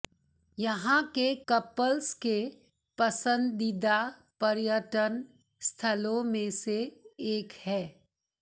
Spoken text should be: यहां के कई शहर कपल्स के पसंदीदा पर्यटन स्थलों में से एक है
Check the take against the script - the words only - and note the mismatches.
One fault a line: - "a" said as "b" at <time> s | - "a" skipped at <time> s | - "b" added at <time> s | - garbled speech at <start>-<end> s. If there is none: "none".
- "कई शहर" skipped at 1.2 s